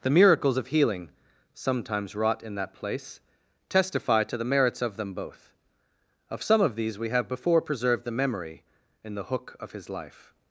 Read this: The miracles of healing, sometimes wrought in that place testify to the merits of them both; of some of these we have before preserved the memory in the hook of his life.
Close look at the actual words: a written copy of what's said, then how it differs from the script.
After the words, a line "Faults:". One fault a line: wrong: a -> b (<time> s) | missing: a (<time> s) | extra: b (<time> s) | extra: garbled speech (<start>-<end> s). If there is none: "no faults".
The miracles of healing, sometimes wrought in that place testify to the merits of them both; of some of these we have before preserved the memory in the hook of his life.
Faults:
no faults